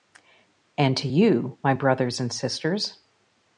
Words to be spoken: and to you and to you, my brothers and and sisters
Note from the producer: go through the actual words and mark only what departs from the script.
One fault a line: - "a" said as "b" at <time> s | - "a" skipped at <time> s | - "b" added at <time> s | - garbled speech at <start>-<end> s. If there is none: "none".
- "and to you" skipped at 1.6 s
- "and" skipped at 2.3 s